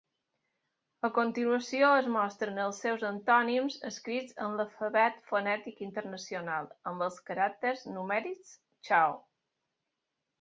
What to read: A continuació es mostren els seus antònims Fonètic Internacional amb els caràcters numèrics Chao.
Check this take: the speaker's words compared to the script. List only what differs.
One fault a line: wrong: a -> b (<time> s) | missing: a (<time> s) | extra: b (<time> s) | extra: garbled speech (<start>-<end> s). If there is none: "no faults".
extra: escrits en l'Alfabet (3.9 s)